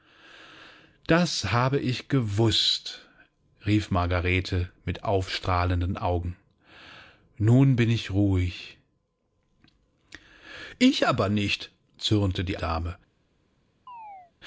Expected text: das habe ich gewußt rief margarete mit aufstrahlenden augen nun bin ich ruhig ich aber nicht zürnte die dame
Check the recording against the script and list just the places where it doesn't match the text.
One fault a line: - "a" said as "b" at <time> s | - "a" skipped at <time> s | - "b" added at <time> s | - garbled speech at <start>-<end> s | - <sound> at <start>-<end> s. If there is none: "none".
- chirp at 13.9-14.3 s